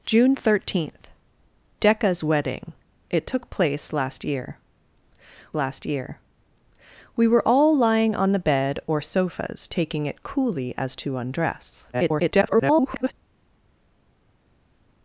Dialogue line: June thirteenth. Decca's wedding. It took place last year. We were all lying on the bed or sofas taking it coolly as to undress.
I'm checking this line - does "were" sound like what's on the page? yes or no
yes